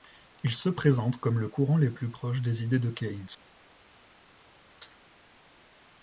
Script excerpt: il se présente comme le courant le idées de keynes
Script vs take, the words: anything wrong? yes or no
yes